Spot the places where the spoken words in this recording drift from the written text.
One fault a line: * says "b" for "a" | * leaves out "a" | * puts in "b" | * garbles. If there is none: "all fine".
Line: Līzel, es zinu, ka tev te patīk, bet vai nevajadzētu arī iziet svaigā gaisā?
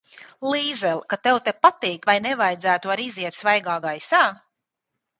* leaves out "es zinu"
* leaves out "bet"